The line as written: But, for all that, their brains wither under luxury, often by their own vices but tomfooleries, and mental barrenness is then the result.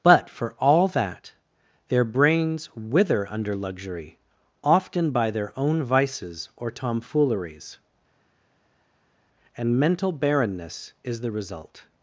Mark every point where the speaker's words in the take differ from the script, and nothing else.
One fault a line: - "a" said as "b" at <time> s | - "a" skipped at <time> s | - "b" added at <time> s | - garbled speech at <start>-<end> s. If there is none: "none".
- "but" said as "or" at 6.6 s
- "then" skipped at 11.2 s